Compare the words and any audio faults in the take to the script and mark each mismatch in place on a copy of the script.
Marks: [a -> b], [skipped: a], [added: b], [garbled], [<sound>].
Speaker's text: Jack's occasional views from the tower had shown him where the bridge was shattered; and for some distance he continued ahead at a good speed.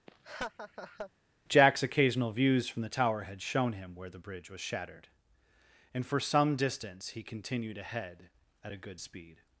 [laugh] Jack's occasional views from the tower had shown him where the bridge was shattered; and for some distance he continued ahead at a good speed.